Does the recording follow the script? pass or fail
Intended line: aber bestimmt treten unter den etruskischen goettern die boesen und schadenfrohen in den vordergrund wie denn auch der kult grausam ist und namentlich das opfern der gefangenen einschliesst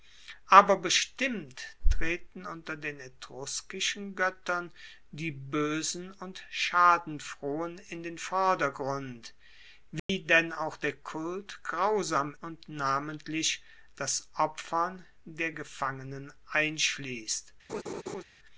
fail